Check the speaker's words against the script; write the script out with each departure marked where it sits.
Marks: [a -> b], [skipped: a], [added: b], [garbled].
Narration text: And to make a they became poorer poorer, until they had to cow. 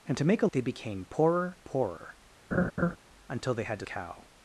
And to make a they became poorer poorer, until they had to cow.